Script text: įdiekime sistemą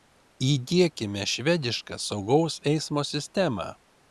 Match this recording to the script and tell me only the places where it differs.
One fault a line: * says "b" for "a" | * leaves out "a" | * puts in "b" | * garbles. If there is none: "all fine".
* puts in "švedišką saugaus eismo"